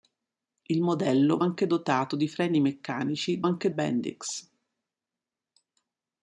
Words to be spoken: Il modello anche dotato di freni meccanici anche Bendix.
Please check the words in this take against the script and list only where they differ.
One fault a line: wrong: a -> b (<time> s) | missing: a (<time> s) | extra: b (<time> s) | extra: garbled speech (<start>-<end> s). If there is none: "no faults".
no faults